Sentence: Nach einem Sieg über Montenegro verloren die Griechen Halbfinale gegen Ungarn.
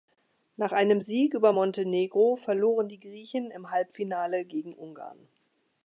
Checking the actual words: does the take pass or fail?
fail